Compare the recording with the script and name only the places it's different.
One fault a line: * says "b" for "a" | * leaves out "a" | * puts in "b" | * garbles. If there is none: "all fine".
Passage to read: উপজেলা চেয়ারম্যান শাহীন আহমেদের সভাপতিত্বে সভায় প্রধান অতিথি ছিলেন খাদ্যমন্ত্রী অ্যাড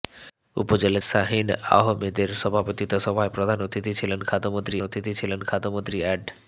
* leaves out "চেয়ারম্যান"
* puts in "অতিথি ছিলেন খাদ্যমন্ত্রী"